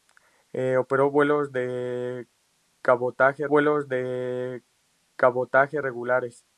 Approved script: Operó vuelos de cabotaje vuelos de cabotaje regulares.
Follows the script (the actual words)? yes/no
yes